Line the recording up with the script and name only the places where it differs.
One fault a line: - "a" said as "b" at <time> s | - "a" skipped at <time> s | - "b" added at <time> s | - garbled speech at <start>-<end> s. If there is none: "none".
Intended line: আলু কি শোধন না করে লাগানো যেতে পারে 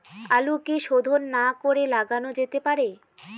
none